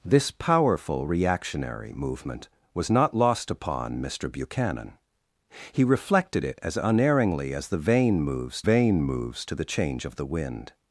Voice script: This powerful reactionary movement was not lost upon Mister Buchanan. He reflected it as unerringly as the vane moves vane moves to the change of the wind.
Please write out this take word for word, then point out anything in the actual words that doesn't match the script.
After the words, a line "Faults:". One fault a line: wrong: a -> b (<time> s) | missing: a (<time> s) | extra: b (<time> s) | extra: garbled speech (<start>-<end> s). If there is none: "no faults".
This powerful reactionary movement was not lost upon Mister Buchanan. He reflected it as unerringly as the vane moves vane moves to the change of the wind.
Faults:
no faults